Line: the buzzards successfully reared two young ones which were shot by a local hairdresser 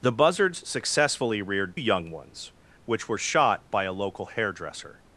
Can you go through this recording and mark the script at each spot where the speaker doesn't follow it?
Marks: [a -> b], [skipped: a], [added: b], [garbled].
the buzzards successfully reared [skipped: two] young ones which were shot by a local hairdresser